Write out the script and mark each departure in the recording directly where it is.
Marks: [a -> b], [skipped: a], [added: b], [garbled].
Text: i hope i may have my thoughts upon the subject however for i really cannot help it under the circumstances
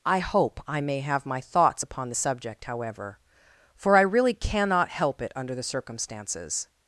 i hope i may have my thoughts upon the subject however for i really cannot help it under the circumstances